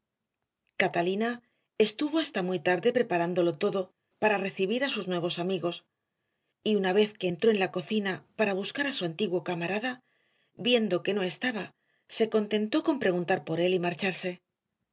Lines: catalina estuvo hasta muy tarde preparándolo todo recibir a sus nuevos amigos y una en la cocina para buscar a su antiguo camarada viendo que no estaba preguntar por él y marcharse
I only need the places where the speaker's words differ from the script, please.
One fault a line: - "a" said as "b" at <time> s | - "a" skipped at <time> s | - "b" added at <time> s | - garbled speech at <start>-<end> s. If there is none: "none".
- "para" added at 4.2 s
- "vez que entró" added at 6.9 s
- "se contentó con" added at 12.1 s